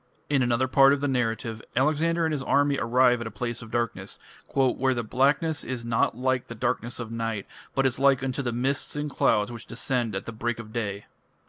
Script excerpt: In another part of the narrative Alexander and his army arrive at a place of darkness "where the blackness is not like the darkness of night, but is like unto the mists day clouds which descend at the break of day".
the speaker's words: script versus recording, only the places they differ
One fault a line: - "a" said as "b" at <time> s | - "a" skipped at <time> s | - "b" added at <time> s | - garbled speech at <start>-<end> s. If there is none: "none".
- "day" said as "and" at 8.9 s